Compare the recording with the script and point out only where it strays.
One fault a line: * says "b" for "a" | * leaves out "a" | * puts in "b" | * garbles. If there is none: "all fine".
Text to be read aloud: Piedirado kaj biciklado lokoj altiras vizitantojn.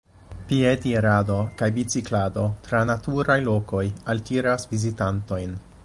* puts in "tra naturaj"